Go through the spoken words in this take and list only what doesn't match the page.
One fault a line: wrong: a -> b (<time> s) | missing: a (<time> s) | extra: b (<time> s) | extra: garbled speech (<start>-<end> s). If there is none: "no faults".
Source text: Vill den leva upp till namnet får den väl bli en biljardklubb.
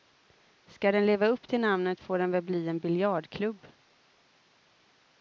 wrong: Vill -> Ska (0.7 s)